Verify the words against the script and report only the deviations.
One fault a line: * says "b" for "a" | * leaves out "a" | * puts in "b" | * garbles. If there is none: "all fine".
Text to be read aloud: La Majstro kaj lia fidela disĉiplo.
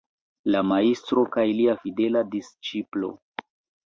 all fine